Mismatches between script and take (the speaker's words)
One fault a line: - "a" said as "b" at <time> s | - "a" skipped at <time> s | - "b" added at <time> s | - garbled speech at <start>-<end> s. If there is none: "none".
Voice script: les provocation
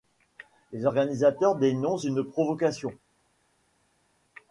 - "organisateurs dénoncent une" added at 0.9 s